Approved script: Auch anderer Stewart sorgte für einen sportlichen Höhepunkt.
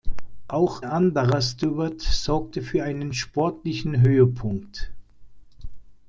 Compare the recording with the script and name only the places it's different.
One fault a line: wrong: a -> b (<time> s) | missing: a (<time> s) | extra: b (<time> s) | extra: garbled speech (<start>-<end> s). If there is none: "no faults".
no faults